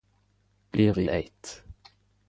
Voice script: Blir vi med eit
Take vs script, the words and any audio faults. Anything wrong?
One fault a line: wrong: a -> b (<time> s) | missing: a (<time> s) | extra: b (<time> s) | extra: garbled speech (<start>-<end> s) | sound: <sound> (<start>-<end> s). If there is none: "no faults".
missing: med (1.1 s)